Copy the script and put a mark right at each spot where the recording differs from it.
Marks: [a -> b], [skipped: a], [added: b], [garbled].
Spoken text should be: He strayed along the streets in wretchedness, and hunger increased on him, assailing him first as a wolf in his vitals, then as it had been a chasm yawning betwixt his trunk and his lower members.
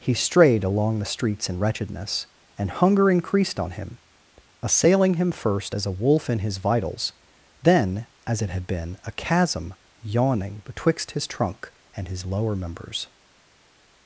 He strayed along the streets in wretchedness, and hunger increased on him, assailing him first as a wolf in his vitals, then as it had been a chasm yawning betwixt his trunk and his lower members.